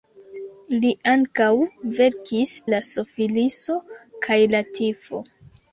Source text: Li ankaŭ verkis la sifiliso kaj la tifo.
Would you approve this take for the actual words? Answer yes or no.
yes